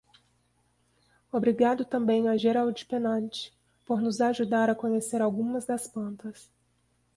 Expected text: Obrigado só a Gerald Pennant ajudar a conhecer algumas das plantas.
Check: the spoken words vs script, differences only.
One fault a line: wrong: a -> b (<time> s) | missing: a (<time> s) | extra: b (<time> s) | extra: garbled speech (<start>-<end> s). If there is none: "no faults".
wrong: só -> também (1.9 s)
extra: por nos (3.8 s)